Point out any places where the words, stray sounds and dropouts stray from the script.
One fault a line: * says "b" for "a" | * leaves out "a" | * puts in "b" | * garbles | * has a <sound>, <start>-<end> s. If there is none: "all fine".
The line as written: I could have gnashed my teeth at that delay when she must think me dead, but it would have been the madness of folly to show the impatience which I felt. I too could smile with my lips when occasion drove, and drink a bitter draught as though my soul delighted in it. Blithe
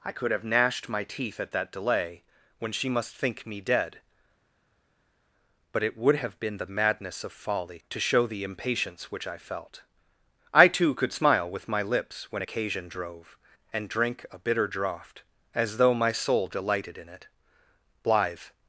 all fine